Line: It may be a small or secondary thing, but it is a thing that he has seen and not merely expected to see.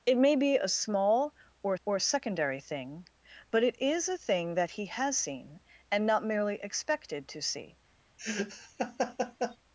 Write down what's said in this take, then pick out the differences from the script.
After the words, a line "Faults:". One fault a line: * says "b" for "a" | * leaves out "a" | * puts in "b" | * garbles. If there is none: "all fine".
It may be a small or or secondary thing, but it is a thing that he has seen and not merely expected to see.
Faults:
* puts in "or"